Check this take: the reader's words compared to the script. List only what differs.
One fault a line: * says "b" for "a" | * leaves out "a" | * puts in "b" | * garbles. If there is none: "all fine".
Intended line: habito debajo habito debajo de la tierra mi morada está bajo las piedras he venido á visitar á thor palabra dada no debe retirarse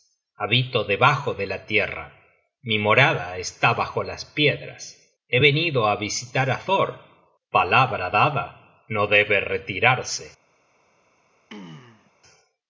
* leaves out "habito debajo"